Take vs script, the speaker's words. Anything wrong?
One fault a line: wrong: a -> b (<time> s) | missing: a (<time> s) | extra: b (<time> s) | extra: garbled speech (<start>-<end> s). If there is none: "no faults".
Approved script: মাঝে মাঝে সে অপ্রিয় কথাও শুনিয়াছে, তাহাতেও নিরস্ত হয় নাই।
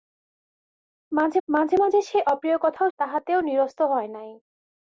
extra: মাঝে (1.8 s)
missing: শুনিয়াছে (2.9 s)